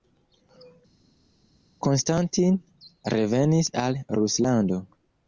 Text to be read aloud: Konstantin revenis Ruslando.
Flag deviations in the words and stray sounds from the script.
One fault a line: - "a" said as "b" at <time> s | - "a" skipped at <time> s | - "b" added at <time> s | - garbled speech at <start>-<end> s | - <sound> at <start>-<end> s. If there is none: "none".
- "al" added at 3.9 s